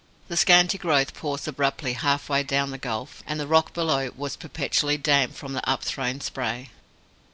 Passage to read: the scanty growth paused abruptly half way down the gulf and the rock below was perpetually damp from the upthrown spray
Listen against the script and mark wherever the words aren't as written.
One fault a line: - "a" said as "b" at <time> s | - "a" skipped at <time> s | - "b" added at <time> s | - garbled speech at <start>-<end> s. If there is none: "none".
none